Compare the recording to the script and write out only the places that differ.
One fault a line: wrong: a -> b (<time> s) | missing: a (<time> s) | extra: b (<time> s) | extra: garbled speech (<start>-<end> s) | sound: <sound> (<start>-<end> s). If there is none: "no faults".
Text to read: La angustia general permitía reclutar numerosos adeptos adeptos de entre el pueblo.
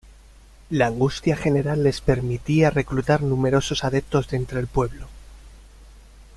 extra: les (1.8 s)
missing: adeptos (4.3 s)